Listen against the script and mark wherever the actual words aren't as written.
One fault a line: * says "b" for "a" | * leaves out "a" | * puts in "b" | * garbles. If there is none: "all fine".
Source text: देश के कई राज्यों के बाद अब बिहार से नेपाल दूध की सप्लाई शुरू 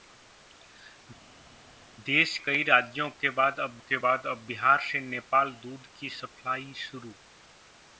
* puts in "कई राज्यों"
* says "बाद अब" for "कई राज्यों"